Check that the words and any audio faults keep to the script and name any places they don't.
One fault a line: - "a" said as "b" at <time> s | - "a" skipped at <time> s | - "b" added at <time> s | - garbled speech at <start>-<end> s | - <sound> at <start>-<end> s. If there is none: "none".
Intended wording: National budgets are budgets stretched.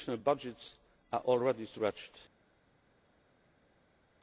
- "budgets" said as "already" at 1.2 s